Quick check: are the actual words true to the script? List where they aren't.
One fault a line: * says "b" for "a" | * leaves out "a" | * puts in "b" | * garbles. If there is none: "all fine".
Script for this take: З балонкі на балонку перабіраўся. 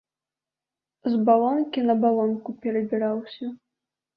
all fine